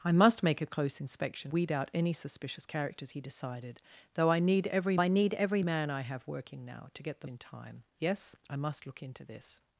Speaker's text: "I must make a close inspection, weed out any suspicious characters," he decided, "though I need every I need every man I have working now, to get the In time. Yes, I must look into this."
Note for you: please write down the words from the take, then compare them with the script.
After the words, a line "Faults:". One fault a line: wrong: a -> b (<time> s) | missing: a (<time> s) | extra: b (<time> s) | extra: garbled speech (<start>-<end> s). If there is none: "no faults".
"I must make a close inspection, weed out any suspicious characters," he decided, "though I need every I need every man I have working now, to get the In time. Yes, I must look into this."
Faults:
no faults